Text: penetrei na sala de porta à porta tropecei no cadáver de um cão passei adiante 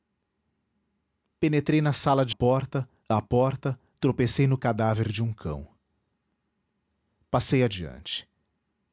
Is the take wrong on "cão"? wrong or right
right